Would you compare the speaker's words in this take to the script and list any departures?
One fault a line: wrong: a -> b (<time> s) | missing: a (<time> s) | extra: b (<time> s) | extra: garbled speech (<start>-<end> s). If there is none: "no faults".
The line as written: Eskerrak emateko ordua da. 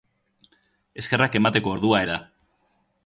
no faults